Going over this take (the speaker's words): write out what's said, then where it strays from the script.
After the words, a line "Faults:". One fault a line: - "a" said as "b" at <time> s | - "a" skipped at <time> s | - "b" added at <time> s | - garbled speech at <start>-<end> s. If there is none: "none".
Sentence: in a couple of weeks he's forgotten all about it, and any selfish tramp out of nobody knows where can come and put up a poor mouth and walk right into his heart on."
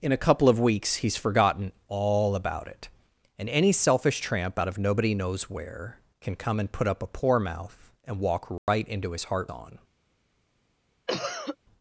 in a couple of weeks he's forgotten all about it, and any selfish tramp out of nobody knows where can come and put up a poor mouth and walk right into his heart on."
Faults:
none